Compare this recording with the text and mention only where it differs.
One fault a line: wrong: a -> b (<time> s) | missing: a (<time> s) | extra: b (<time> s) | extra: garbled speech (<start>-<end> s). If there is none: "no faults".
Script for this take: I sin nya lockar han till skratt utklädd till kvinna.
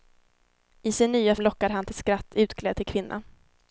no faults